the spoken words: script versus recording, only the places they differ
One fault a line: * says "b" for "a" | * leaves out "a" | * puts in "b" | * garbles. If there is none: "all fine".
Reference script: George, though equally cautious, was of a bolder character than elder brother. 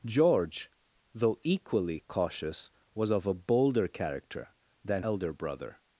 all fine